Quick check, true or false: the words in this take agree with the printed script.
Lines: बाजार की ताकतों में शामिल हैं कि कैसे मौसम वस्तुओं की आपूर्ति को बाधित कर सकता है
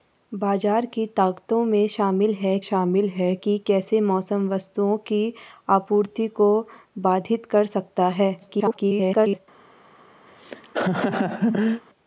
false